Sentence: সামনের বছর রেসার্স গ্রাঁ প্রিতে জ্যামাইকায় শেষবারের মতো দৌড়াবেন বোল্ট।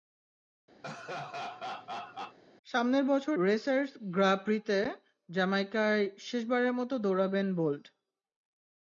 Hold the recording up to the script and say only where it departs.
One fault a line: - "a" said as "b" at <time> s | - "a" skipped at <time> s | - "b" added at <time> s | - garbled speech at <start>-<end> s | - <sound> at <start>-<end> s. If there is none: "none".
- laugh at 0.8-2.4 s